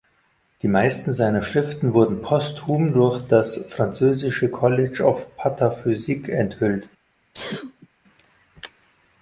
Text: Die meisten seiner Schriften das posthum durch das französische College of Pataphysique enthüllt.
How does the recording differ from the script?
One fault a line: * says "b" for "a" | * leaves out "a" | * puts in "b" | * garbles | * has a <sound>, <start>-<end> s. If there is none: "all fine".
* says "wurden" for "das"
* has a sneeze, 7.3-7.9 s